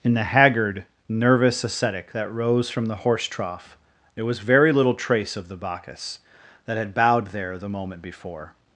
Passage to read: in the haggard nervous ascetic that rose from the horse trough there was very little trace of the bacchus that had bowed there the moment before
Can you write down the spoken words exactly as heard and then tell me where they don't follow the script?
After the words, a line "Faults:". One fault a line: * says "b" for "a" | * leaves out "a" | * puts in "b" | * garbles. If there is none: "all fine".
in the haggard nervous ascetic that rose from the horse trough there was very little trace of the bacchus that had bowed there the moment before
Faults:
all fine